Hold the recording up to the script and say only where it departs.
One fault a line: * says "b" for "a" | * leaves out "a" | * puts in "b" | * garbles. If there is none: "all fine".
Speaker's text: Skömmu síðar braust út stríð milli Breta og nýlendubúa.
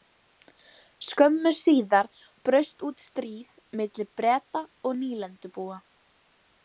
all fine